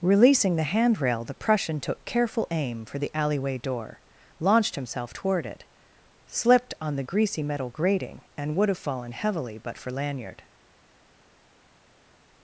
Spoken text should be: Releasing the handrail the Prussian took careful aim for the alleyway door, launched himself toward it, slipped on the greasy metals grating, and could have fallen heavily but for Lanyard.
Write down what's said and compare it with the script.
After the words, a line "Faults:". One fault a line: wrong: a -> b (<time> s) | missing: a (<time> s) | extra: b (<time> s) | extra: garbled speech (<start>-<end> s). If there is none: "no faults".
Releasing the handrail the Prussian took careful aim for the alleyway door, launched himself toward it, slipped on the greasy metal grating, and would have fallen heavily but for Lanyard.
Faults:
wrong: metals -> metal (7.4 s)
wrong: could -> would (8.5 s)